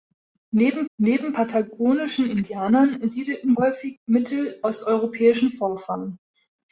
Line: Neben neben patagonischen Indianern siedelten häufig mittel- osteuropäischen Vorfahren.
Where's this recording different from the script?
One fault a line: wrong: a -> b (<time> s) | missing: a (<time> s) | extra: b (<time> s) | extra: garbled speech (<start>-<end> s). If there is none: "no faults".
no faults